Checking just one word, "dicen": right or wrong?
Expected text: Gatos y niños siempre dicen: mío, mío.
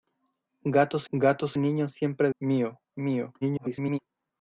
wrong